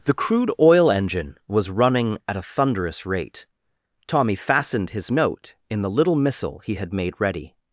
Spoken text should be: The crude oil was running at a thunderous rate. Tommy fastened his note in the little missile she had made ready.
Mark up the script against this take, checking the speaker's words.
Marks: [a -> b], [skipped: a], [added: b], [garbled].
The crude oil [added: engine] was running at a thunderous rate. Tommy fastened his note in the little missile [she -> he] had made ready.